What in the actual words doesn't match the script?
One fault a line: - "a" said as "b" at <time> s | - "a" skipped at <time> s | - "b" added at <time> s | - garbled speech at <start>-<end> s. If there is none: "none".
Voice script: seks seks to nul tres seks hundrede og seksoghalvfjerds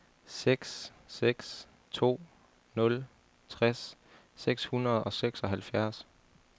none